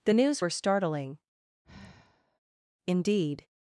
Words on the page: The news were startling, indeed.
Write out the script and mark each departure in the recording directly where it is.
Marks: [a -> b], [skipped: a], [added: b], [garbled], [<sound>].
The news were startling, [sigh] indeed.